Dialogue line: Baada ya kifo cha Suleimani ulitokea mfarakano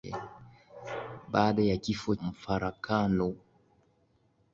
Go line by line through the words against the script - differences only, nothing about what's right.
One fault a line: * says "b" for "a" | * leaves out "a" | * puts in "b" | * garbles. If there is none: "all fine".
* leaves out "cha Suleimani ulitokea"